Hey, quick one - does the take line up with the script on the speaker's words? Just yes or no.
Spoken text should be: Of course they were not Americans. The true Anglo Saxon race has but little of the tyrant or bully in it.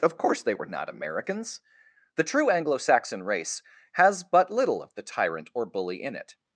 yes